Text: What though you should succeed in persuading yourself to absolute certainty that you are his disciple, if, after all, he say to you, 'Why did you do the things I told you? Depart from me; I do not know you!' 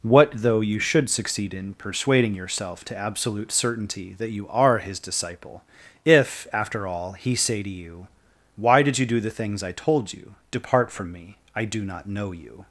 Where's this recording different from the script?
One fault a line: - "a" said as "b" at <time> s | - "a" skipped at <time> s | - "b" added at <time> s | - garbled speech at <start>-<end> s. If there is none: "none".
none